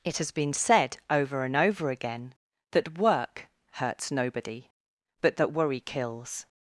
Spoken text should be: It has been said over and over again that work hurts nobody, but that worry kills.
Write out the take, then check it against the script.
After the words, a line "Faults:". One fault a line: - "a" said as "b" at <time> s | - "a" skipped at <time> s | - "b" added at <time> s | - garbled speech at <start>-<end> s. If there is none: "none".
It has been said over and over again that work hurts nobody, but that worry kills.
Faults:
none